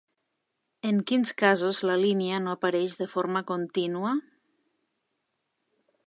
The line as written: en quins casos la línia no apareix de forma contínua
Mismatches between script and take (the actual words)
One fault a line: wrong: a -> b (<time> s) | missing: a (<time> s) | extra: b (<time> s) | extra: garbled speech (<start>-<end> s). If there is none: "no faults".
no faults